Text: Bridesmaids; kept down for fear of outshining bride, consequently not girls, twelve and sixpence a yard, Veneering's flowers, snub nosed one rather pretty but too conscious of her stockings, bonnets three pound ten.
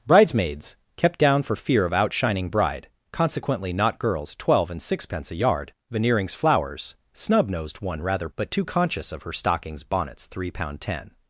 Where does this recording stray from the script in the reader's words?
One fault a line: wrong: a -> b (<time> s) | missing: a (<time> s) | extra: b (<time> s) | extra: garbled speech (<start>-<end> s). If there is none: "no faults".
missing: pretty (8.3 s)